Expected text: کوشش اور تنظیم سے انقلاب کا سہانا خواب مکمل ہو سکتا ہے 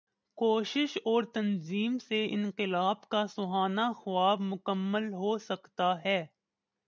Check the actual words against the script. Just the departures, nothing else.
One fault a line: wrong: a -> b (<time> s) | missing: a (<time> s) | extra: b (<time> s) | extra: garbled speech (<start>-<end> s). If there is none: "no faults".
no faults